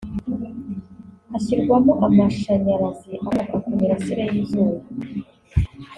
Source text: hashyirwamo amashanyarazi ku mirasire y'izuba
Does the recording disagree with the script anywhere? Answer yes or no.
yes